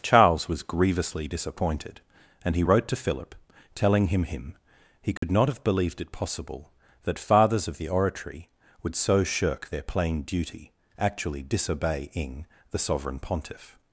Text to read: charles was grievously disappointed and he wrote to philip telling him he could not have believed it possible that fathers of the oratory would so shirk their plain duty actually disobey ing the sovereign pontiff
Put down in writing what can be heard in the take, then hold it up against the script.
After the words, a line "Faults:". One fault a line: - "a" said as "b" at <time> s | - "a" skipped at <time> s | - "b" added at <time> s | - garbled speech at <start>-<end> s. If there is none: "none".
charles was grievously disappointed and he wrote to philip telling him him he could not have believed it possible that fathers of the oratory would so shirk their plain duty actually disobey ing the sovereign pontiff
Faults:
- "him" added at 4.2 s